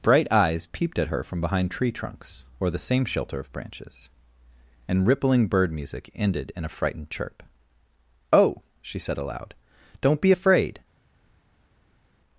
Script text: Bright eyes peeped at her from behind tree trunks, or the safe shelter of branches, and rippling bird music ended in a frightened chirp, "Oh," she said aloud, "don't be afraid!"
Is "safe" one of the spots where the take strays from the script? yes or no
yes